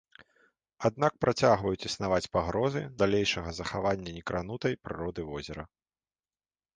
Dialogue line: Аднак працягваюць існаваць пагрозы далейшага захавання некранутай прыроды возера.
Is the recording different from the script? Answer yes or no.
no